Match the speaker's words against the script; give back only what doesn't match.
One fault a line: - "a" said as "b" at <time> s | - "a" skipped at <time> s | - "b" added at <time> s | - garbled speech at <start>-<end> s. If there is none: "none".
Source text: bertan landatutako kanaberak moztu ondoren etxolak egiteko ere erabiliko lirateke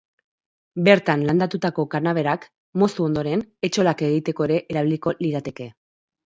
none